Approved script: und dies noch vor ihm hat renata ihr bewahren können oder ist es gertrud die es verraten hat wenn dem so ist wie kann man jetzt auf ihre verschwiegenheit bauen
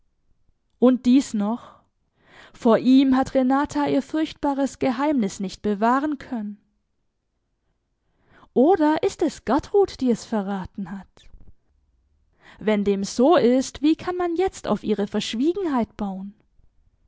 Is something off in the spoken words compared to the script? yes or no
yes